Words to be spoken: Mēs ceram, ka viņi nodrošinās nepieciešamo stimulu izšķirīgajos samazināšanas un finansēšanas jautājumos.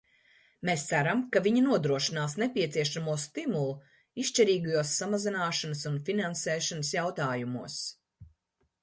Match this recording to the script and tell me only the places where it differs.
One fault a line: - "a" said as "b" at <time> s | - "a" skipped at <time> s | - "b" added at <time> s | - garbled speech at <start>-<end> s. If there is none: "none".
none